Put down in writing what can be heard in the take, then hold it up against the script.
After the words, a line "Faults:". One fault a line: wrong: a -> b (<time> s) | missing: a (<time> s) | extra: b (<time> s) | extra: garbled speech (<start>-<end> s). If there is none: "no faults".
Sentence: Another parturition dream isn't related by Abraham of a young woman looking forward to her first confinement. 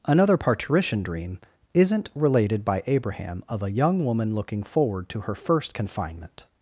Another parturition dream isn't related by Abraham of a young woman looking forward to her first confinement.
Faults:
no faults